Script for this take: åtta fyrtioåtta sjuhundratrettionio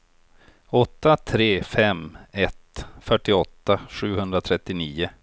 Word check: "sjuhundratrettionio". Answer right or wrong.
right